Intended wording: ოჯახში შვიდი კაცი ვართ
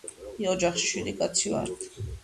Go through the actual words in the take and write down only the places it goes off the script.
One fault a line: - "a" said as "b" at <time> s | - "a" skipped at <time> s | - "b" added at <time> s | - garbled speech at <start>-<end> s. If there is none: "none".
none